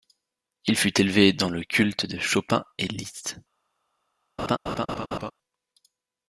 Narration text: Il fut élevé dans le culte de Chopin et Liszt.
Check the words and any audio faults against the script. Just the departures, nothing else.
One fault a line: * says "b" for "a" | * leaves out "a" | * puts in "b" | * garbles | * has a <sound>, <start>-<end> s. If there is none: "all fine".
* has a laugh, 4.4-5.3 s